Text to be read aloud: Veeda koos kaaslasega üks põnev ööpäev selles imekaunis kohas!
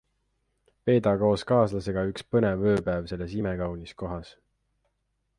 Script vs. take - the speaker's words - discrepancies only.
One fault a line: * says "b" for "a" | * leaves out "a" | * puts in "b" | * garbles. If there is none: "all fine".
all fine